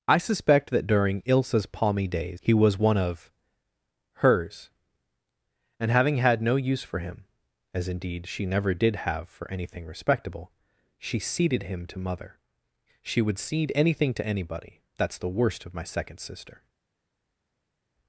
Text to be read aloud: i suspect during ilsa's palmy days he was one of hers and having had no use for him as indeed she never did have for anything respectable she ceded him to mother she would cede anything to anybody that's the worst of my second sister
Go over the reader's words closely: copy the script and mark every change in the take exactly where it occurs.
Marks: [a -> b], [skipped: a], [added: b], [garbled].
i suspect [added: that] during ilsa's palmy days he was one of hers and having had no use for him as indeed she never did have for anything respectable she ceded him to mother she would cede anything to anybody that's the worst of my second sister